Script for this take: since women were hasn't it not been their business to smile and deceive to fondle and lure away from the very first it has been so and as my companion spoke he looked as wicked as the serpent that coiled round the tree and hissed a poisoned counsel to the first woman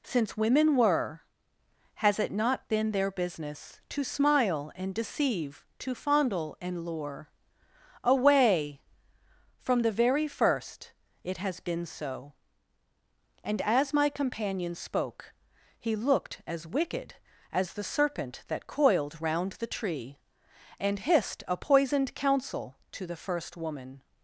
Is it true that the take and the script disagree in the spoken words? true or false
true